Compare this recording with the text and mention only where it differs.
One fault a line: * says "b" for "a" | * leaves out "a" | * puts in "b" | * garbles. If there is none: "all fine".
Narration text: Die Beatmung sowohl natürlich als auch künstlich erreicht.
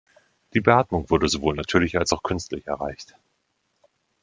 * puts in "wurde"